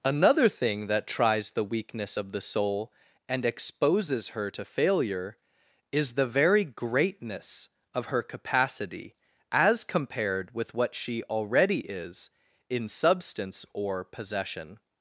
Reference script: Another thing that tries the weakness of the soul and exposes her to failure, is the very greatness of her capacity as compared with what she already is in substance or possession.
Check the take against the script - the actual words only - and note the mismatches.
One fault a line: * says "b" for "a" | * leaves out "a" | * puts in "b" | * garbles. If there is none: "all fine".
all fine